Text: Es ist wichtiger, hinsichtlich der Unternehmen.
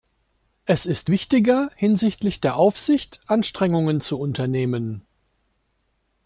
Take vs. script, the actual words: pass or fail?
fail